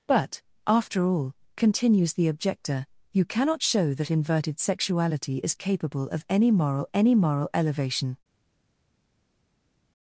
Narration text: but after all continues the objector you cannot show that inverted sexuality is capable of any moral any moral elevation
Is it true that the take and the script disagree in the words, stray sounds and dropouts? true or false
false